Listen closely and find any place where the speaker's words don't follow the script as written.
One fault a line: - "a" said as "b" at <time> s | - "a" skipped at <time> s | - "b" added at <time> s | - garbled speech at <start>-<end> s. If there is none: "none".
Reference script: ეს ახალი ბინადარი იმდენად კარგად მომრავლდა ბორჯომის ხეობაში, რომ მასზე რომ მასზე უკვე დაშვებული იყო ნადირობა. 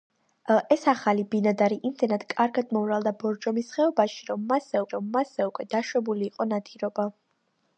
none